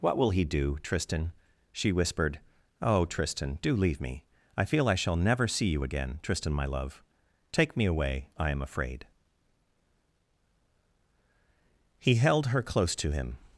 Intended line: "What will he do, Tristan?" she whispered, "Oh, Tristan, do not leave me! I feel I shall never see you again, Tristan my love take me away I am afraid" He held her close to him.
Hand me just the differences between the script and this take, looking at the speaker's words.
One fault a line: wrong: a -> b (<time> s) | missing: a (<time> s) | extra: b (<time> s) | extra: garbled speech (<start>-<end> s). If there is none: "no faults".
missing: not (3.8 s)